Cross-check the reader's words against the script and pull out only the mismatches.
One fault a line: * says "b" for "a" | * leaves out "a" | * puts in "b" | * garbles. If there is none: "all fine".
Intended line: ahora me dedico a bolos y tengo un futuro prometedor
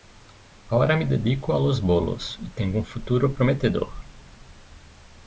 * puts in "los"